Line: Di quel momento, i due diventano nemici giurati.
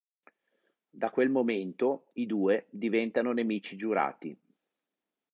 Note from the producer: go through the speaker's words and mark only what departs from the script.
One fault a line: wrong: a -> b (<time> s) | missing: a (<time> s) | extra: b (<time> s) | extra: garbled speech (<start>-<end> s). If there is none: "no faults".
wrong: Di -> Da (0.9 s)